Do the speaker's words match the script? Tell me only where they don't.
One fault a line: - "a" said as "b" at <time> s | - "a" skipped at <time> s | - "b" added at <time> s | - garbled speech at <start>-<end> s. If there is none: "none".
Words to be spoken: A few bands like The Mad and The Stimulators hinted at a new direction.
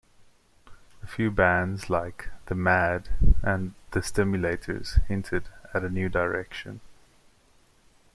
none